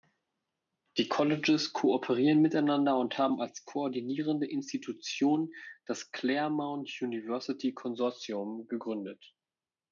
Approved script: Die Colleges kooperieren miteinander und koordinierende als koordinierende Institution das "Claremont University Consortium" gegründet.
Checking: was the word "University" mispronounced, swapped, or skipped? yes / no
no